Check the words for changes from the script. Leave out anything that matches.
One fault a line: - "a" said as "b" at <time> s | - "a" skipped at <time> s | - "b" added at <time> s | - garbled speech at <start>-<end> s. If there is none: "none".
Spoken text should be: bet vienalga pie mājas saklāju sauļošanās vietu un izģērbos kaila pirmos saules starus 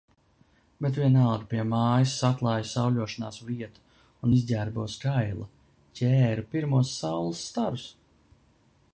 - "ķēru" added at 6.0 s